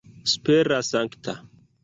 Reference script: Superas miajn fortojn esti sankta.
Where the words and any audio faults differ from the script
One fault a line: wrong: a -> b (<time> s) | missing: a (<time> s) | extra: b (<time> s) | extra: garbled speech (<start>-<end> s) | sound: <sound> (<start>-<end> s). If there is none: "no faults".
missing: miajn fortojn esti (0.9 s)